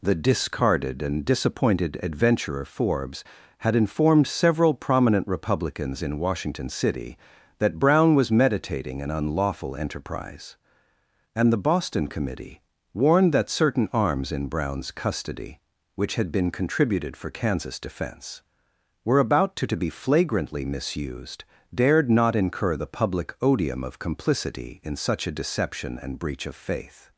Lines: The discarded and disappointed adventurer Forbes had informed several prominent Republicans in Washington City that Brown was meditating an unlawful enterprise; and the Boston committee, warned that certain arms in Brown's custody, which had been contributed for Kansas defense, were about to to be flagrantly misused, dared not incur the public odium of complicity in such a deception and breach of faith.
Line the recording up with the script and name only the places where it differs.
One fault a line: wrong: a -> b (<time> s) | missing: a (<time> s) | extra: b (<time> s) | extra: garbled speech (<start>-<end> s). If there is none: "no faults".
no faults